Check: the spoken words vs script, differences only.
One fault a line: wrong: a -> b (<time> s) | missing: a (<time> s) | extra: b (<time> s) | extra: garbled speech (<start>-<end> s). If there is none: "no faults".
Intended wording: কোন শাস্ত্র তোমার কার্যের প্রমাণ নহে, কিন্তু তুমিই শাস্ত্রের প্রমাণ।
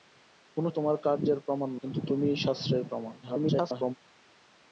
missing: শাস্ত্র (0.7 s)
missing: নহে (1.7 s)
extra: garbled speech (3.2-3.9 s)